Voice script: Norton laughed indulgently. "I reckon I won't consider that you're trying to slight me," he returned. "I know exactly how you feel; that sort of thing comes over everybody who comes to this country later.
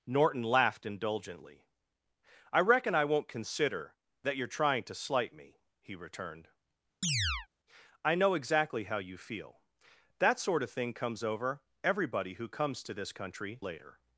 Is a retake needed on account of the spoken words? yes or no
no